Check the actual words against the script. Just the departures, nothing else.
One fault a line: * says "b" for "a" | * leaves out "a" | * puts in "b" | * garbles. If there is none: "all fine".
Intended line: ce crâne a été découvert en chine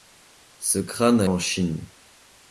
* leaves out "été découvert"